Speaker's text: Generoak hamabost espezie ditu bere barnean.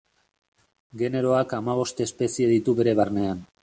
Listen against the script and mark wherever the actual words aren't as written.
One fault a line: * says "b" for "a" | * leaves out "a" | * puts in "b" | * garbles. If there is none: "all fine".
all fine